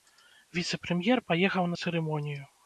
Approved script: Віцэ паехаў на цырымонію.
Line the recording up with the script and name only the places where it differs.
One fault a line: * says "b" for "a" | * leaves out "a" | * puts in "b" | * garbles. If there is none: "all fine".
* puts in "прэм'ер"